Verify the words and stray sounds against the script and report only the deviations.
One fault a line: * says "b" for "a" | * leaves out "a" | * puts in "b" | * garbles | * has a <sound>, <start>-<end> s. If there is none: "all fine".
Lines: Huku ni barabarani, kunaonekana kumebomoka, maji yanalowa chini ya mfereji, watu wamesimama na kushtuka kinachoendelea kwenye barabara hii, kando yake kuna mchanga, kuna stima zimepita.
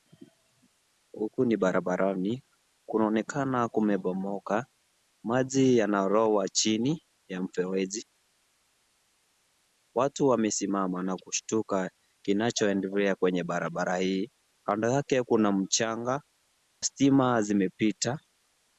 * leaves out "kuna"